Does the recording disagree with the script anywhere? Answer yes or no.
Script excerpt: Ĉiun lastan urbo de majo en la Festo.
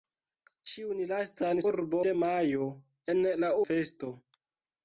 no